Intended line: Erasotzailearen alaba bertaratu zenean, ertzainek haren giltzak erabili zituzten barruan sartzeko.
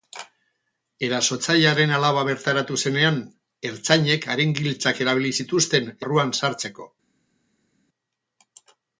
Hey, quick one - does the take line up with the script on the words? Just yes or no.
yes